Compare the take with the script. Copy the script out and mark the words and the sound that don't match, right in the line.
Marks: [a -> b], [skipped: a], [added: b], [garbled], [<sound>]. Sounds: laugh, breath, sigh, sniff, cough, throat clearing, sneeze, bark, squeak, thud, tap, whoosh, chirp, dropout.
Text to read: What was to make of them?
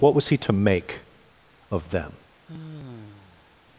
What was [added: he] to make of them? [sigh]